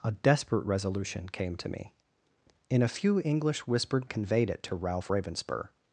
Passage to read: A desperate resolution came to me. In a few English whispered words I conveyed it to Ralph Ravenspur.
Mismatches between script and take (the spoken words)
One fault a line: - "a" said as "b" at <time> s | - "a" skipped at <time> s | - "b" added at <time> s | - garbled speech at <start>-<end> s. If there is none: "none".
- "words I" skipped at 4.1 s